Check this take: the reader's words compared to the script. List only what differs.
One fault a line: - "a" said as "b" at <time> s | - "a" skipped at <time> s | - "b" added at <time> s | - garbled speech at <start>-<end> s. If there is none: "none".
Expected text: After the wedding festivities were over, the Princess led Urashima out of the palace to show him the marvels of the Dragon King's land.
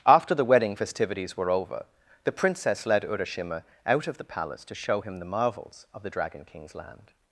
none